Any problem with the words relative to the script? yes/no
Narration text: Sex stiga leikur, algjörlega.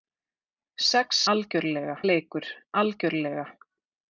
yes